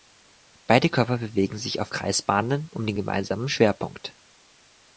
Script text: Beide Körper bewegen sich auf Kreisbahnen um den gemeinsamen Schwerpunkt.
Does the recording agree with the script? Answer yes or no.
yes